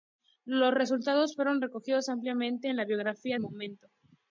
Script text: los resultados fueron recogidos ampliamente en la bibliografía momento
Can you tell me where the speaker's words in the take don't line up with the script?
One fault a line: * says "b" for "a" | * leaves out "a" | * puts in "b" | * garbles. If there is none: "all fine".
all fine